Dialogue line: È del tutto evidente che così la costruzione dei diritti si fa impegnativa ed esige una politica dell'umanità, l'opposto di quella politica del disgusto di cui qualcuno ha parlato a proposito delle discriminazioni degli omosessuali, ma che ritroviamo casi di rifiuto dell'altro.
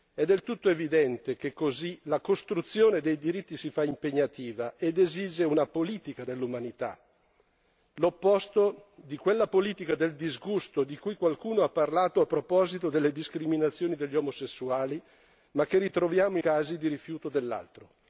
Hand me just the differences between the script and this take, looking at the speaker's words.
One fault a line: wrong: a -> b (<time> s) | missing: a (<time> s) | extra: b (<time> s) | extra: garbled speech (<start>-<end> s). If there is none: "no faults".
no faults